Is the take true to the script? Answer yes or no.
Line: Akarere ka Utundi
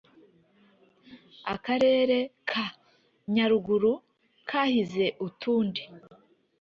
no